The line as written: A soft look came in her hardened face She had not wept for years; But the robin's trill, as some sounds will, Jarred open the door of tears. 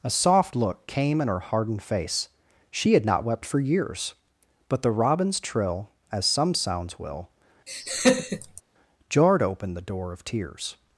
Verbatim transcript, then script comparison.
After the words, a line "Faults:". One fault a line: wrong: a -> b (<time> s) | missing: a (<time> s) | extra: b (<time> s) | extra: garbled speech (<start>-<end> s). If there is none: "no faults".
A soft look came in her hardened face She had not wept for years; But the robin's trill, as some sounds will, Jarred open the door of tears.
Faults:
no faults